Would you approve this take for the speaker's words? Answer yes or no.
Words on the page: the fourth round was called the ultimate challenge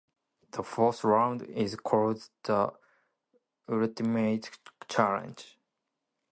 no